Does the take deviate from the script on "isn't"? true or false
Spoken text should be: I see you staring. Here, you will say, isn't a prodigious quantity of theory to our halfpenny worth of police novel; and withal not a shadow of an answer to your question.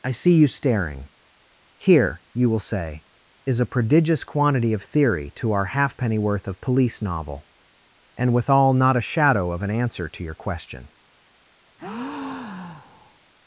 true